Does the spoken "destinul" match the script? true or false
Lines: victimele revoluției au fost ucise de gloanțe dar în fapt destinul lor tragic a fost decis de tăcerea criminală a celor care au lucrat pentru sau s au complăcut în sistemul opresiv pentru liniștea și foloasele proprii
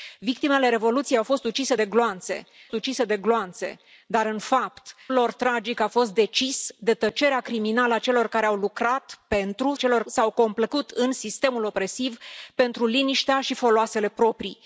false